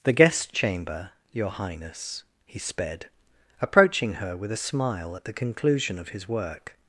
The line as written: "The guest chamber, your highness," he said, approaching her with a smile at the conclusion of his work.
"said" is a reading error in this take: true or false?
true